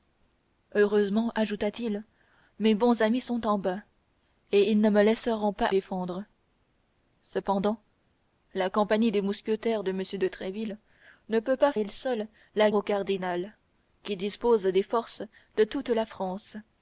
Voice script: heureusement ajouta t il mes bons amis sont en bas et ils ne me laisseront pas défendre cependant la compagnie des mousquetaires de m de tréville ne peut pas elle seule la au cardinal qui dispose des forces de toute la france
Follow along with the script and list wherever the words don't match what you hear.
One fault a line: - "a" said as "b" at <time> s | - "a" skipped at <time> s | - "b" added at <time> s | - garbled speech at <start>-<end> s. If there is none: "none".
none